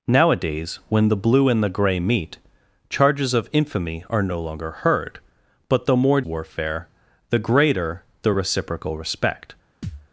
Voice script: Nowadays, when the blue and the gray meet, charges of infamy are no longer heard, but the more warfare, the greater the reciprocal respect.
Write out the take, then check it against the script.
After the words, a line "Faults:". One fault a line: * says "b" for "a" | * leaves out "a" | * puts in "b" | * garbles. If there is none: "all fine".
Nowadays, when the blue and the gray meet, charges of infamy are no longer heard, but the more warfare, the greater the reciprocal respect.
Faults:
all fine